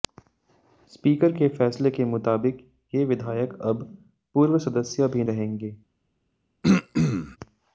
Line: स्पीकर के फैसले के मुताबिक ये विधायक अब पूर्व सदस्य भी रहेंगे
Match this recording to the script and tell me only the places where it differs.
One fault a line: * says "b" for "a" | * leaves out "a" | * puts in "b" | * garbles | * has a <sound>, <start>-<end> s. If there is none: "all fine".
* has a throat clearing, 6.6-7.4 s